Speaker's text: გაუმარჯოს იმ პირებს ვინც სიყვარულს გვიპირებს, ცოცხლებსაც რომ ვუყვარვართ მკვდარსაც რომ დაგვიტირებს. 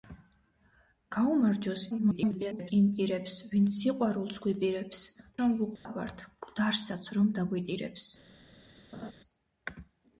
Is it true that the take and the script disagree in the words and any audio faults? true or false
true